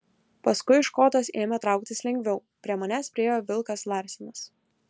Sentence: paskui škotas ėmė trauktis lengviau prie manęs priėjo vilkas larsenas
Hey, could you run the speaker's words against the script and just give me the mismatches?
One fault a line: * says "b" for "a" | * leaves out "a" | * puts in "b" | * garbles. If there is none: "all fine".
all fine